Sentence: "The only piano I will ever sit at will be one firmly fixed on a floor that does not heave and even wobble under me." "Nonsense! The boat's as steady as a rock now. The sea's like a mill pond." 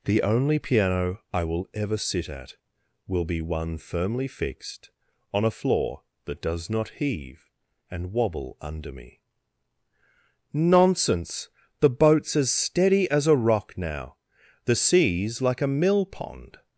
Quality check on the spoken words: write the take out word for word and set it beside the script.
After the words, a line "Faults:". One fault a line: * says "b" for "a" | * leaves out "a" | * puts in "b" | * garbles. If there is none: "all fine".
"The only piano I will ever sit at will be one firmly fixed on a floor that does not heave and wobble under me." "Nonsense! The boat's as steady as a rock now. The sea's like a mill pond."
Faults:
* leaves out "even"